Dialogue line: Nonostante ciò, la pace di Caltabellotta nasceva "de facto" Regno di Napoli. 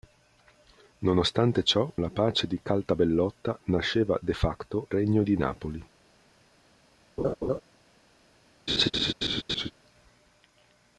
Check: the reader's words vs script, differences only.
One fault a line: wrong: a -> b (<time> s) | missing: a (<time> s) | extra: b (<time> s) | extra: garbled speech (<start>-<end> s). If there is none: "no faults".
no faults